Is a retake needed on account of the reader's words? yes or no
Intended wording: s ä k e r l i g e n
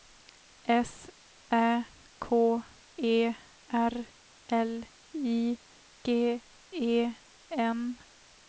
no